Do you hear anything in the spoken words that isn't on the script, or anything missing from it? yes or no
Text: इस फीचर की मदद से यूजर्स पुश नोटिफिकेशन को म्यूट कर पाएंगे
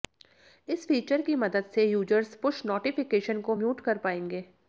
no